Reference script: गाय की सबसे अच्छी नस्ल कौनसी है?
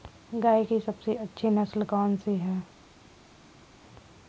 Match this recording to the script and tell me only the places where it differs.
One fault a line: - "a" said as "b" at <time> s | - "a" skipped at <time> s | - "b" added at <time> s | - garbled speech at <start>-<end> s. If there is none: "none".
none